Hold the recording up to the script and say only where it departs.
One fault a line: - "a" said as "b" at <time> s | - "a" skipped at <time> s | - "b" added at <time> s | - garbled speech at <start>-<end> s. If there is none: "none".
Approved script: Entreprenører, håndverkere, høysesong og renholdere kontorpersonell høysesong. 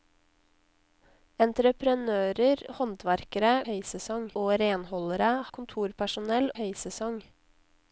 none